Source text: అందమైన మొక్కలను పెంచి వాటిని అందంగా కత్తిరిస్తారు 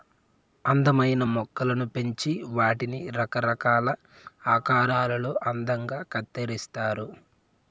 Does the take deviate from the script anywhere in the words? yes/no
yes